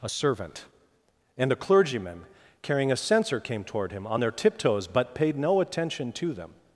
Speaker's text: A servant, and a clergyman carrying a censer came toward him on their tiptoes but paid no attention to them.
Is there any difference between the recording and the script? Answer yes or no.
no